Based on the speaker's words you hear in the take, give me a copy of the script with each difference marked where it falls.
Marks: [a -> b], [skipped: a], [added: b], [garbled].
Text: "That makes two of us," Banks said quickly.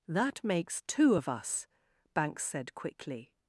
"That makes two of us," Banks said quickly.